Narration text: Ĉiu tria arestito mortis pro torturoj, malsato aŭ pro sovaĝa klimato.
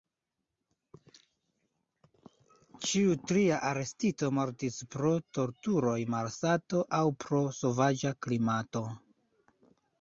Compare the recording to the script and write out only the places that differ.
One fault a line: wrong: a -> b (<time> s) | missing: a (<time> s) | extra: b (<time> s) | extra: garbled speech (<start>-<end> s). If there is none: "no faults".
no faults